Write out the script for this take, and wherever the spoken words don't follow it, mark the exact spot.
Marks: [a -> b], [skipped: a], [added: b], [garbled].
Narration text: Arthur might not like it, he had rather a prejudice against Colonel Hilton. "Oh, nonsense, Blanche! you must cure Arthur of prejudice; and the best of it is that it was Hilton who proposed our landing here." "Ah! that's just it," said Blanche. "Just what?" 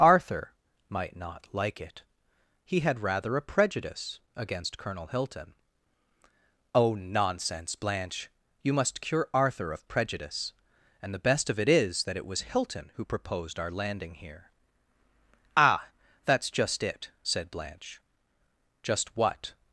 Arthur might not like it, he had rather a prejudice against Colonel Hilton. "Oh, nonsense, Blanche! you must cure Arthur of prejudice; and the best of it is that it was Hilton who proposed our landing here." "Ah! that's just it," said Blanche. "Just what?"